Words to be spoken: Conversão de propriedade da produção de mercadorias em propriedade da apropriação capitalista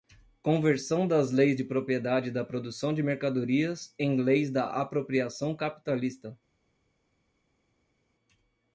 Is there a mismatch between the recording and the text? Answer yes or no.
yes